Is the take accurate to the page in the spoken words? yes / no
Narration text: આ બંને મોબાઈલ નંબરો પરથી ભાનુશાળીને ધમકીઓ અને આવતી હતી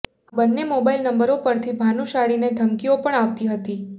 no